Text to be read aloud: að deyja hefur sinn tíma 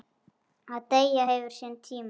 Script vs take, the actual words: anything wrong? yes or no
no